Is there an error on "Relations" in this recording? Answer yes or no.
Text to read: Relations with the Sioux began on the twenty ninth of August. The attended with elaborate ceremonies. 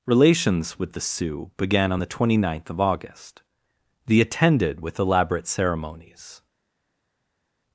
no